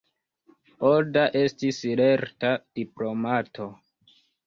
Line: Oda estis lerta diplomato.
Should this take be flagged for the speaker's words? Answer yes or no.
no